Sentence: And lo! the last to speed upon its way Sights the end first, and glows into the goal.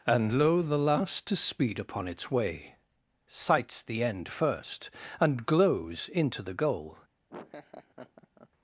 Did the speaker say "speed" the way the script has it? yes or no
yes